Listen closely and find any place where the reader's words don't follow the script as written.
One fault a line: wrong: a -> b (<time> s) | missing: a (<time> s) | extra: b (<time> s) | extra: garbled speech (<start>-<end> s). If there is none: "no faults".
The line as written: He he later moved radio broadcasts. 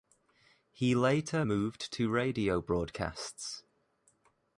missing: he (0.9 s)
extra: to (1.9 s)